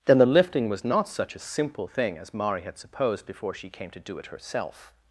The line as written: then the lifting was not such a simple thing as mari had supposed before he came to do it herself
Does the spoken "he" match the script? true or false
false